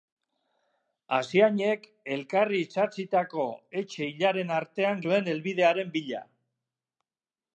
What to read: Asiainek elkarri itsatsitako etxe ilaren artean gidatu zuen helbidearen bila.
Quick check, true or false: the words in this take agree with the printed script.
false